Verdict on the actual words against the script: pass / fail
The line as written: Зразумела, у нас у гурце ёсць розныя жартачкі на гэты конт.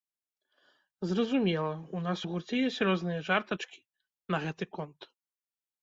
pass